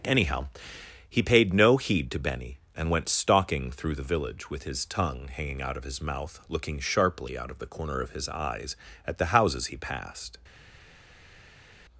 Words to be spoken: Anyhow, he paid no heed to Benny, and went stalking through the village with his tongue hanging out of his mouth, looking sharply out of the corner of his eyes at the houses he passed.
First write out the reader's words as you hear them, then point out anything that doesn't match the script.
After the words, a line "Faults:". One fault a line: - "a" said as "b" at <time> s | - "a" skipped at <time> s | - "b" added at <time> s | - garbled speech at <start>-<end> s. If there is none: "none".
Anyhow, he paid no heed to Benny, and went stalking through the village with his tongue hanging out of his mouth, looking sharply out of the corner of his eyes at the houses he passed.
Faults:
none